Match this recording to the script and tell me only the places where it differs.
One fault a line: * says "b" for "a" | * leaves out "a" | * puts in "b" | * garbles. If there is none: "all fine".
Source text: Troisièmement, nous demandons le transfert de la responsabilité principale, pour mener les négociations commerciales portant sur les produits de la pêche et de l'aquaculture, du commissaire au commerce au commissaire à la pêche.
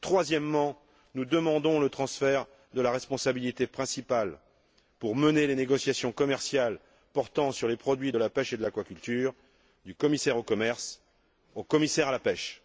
all fine